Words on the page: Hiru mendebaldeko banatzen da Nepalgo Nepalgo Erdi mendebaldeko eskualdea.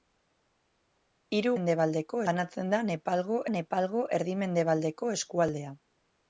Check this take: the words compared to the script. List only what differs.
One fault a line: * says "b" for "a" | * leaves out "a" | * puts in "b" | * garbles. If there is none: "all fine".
all fine